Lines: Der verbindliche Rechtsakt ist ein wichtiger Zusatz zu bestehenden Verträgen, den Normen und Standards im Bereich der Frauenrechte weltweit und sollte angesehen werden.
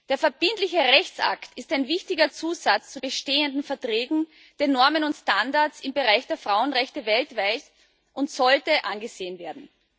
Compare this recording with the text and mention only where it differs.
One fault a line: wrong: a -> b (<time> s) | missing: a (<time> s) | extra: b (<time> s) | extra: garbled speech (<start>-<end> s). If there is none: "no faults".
no faults